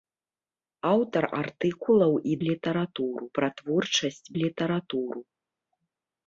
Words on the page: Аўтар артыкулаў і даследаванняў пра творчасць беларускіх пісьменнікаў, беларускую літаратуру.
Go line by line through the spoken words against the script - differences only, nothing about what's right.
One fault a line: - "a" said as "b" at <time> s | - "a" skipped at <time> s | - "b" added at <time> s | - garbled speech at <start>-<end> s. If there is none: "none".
- "даследаванняў" said as "літаратуру" at 2.5 s
- "беларускіх пісьменнікаў беларускую" skipped at 4.3 s